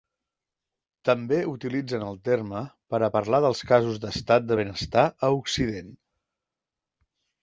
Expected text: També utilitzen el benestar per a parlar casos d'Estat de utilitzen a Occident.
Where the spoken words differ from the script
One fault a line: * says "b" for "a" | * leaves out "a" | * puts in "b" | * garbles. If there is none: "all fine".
* says "terme" for "benestar"
* puts in "dels"
* says "benestar" for "utilitzen"